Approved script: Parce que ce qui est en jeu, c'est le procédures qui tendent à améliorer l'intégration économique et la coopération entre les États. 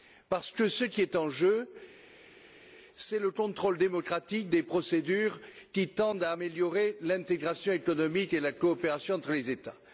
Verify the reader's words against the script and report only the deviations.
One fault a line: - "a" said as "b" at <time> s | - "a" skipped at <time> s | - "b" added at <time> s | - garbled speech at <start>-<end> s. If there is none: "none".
- "contrôle démocratique des" added at 3.3 s